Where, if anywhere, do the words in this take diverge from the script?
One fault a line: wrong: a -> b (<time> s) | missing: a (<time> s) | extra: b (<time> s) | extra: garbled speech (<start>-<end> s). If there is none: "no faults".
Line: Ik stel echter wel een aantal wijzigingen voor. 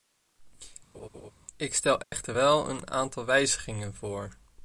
no faults